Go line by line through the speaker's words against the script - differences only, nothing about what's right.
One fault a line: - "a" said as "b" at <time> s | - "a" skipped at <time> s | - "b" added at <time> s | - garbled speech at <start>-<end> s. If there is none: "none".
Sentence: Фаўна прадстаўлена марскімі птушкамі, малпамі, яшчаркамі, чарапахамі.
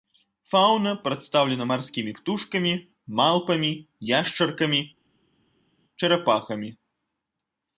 none